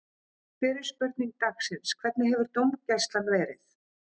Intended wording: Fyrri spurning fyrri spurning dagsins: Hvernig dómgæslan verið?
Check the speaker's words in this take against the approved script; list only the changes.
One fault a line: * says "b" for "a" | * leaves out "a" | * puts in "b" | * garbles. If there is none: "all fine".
* leaves out "fyrri spurning"
* puts in "hefur"